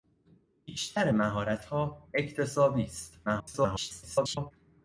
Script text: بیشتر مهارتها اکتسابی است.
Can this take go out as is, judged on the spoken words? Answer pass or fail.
fail